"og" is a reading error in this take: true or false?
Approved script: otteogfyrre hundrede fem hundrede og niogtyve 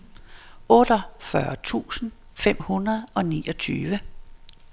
false